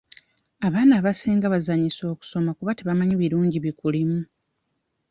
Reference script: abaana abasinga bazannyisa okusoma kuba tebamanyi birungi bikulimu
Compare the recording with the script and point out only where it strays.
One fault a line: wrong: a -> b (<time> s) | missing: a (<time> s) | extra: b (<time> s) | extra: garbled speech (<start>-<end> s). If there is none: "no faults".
no faults